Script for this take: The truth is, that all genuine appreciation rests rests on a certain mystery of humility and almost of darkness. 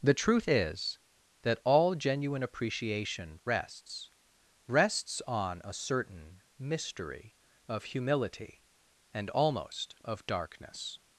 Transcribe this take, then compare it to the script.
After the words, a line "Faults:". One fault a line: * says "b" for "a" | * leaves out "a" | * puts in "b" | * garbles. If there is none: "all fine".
The truth is, that all genuine appreciation rests rests on a certain mystery of humility and almost of darkness.
Faults:
all fine